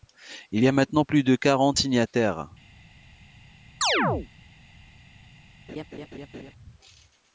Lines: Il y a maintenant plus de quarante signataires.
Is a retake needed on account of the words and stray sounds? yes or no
yes